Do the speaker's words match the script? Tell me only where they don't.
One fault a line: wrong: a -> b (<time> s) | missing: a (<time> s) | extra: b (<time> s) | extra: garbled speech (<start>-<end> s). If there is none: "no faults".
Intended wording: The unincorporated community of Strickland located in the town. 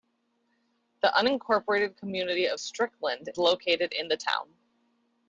no faults